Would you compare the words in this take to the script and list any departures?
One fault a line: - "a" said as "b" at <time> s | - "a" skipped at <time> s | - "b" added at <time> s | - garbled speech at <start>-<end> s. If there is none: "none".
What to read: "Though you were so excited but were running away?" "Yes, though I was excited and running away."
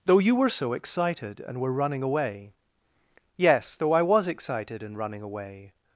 - "but" said as "and" at 1.4 s